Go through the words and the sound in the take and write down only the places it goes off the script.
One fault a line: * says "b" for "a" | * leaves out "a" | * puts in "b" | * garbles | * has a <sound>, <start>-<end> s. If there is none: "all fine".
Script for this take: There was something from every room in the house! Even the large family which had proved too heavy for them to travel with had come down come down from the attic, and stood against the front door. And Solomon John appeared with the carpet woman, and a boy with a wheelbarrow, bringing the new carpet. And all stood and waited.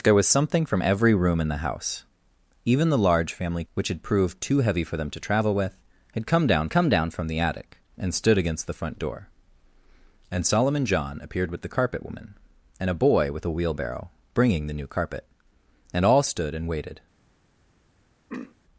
* has a throat clearing, 18.3-18.6 s